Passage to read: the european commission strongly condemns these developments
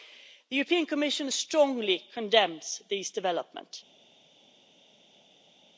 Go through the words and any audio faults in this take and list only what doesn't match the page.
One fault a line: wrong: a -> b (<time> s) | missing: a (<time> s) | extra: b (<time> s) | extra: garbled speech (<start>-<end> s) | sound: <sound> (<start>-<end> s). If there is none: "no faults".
no faults